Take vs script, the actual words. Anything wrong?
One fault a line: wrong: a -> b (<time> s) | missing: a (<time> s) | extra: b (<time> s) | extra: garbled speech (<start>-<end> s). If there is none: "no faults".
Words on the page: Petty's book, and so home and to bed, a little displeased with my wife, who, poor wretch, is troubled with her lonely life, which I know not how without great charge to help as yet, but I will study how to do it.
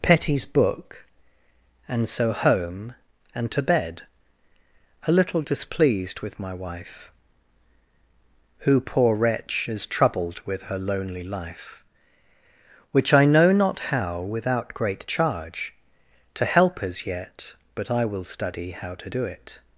no faults